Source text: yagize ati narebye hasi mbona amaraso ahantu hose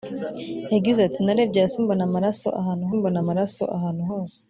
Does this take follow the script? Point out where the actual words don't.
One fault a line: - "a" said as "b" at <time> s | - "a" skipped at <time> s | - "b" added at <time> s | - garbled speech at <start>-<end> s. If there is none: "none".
- "mbona amaraso ahantu" added at 3.0 s